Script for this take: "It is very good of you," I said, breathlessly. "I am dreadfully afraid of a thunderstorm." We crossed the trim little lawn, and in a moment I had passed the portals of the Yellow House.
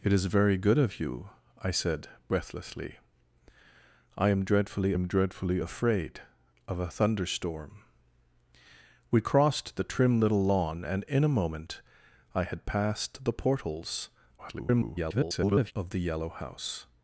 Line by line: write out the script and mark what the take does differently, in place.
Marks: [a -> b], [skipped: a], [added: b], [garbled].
"It is very good of you," I said, breathlessly. "I am dreadfully [added: am dreadfully] afraid of a thunderstorm." We crossed the trim little lawn, and in a moment I had passed the portals [garbled] of the Yellow House.